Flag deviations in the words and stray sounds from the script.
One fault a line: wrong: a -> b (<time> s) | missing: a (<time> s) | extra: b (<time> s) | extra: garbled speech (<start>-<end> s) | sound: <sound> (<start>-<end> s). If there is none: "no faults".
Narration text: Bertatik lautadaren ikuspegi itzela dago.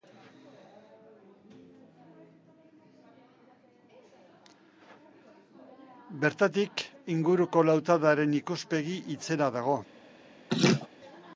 extra: inguruko (7.1 s)
sound: laugh (10.5-10.9 s)